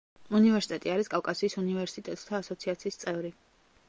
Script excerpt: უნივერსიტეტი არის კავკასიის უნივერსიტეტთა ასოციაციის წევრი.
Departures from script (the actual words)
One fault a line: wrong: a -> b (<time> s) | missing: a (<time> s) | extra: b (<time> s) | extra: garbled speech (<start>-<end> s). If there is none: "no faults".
no faults